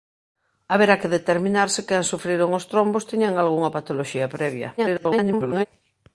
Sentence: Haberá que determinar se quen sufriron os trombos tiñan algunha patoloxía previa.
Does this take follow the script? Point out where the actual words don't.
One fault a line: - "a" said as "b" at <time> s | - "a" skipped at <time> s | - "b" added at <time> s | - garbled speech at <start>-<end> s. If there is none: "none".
- garbled speech at 4.8-5.7 s